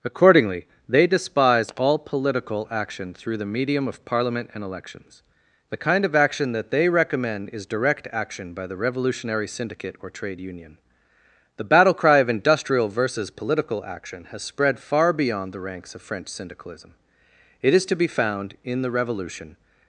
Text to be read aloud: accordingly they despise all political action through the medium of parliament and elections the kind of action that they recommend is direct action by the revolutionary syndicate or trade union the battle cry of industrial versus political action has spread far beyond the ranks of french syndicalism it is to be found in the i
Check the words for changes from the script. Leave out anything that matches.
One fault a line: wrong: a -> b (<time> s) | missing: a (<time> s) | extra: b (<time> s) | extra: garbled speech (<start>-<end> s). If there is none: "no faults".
wrong: i -> revolution (18.9 s)